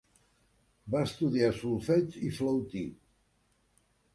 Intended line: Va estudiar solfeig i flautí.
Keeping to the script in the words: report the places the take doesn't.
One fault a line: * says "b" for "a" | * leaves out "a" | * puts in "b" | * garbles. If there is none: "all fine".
all fine